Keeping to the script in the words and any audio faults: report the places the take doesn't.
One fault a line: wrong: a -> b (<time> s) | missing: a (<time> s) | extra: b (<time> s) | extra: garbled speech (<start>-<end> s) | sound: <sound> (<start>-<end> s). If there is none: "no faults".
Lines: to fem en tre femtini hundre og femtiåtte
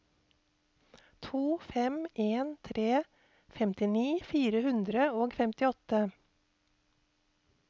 extra: fire (4.3 s)